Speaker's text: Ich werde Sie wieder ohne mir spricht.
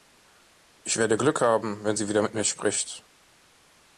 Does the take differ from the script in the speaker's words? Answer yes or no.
yes